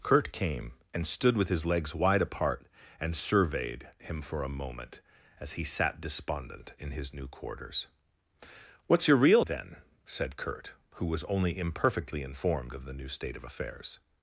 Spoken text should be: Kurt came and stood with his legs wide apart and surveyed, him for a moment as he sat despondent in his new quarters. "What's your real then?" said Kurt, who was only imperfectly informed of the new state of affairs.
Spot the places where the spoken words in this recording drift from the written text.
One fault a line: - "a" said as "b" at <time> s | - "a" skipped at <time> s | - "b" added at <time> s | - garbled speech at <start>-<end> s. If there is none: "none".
none